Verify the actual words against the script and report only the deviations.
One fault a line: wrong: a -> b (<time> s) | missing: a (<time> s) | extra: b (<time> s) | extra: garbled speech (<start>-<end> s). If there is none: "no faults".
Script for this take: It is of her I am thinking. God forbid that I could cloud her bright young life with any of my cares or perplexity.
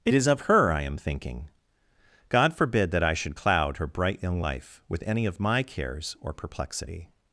wrong: could -> should (3.1 s)